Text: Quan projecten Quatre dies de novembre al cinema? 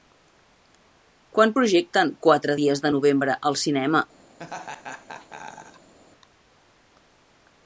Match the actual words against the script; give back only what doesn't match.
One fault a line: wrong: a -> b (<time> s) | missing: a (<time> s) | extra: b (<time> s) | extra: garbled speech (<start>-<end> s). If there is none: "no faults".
no faults